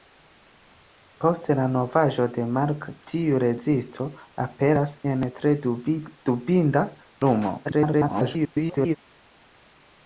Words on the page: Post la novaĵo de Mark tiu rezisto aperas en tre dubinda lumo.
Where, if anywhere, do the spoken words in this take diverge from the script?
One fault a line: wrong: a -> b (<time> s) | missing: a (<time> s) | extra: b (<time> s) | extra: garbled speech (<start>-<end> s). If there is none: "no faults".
extra: garbled speech (7.6-9.0 s)